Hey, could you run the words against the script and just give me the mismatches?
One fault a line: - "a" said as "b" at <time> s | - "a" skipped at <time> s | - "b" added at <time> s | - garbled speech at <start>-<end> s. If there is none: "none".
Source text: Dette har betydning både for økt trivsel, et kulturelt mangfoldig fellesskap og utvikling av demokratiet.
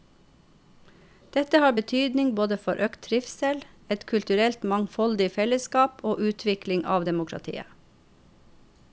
none